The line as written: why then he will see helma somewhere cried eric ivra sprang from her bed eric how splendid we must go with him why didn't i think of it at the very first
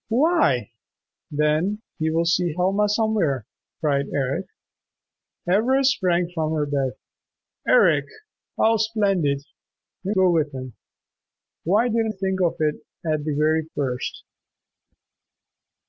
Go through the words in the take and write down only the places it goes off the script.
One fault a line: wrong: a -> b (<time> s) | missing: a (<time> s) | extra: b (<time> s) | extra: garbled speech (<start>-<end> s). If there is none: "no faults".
missing: must (10.2 s)
missing: i (12.1 s)